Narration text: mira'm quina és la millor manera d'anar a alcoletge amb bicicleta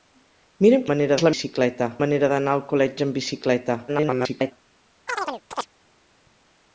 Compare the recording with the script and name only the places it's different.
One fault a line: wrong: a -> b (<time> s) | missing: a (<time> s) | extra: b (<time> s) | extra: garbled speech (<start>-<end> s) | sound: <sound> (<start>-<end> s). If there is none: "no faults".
wrong: quina -> manera (0.9 s)
wrong: millor -> bicicleta (1.3 s)
extra: garbled speech (3.9-4.5 s)
sound: chirp (5.1-5.7 s)